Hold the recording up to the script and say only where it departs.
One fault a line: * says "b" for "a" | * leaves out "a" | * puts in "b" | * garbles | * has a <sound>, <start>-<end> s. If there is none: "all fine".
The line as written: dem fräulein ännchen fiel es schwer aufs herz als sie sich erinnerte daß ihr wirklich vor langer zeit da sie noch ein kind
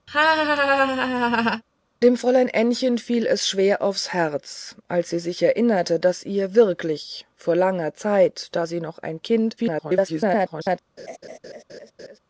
* has a laugh, 0.1-1.6 s
* garbles
* has a laugh, 11.0-12.2 s